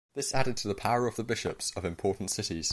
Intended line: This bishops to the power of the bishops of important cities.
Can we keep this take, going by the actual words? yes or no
no